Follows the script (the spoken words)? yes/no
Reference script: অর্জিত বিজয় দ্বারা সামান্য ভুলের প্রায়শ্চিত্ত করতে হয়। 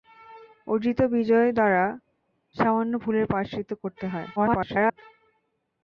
no